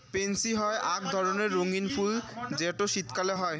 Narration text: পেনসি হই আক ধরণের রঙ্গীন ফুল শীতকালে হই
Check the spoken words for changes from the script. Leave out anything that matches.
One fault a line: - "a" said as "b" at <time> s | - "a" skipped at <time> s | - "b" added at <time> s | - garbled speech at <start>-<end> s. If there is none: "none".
- "যেটো" added at 2.6 s